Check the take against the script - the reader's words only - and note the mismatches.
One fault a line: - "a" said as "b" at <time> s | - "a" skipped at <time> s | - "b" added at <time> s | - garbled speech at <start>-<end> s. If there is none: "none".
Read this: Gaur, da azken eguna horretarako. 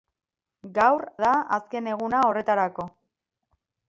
none